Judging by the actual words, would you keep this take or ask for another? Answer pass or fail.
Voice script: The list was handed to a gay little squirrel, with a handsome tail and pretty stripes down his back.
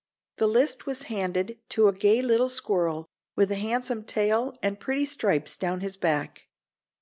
pass